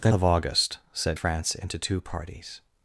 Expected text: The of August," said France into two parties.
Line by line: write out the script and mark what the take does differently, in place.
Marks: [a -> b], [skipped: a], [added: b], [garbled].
The of August," said France into two parties.